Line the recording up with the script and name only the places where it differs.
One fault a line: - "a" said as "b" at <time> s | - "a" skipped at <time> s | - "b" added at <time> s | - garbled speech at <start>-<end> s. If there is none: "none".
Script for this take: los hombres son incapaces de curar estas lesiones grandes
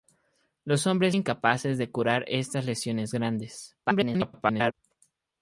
- "son" skipped at 1.1 s
- garbled speech at 3.8-4.7 s